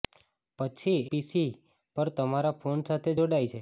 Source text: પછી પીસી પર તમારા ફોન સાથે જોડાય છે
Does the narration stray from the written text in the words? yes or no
no